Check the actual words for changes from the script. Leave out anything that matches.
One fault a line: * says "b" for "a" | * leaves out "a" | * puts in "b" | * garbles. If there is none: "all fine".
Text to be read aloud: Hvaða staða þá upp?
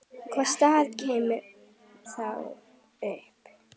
all fine